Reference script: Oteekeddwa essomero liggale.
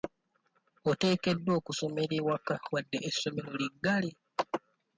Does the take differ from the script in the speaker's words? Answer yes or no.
yes